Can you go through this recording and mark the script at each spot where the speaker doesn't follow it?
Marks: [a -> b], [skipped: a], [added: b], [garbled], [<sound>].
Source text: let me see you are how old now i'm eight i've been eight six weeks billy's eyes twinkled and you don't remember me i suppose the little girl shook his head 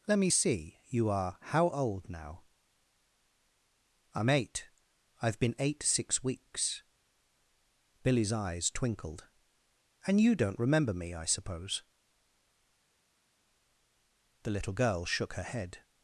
let me see you are how old now i'm eight i've been eight six weeks billy's eyes twinkled and you don't remember me i suppose the little girl shook [his -> her] head